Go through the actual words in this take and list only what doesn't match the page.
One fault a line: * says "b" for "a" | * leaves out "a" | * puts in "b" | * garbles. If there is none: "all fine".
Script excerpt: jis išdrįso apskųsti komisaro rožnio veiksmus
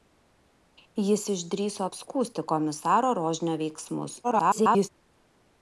* garbles